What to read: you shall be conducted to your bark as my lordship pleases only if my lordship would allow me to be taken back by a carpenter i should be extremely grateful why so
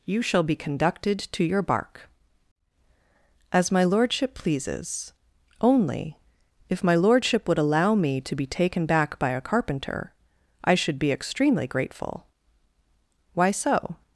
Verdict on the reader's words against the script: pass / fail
pass